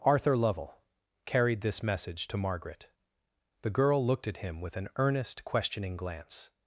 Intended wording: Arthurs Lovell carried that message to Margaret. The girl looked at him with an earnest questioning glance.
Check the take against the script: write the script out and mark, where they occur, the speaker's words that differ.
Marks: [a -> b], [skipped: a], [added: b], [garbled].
[Arthurs -> Arthur] Lovell carried [that -> this] message to Margaret. The girl looked at him with an earnest questioning glance.